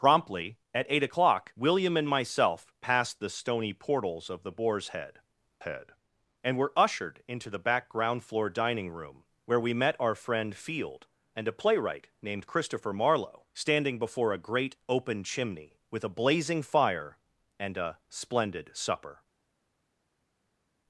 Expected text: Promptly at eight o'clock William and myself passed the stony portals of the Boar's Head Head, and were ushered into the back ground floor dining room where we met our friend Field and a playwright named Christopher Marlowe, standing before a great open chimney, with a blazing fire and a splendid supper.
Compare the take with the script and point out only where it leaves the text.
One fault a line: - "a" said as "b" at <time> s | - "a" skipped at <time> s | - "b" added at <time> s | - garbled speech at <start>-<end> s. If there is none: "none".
none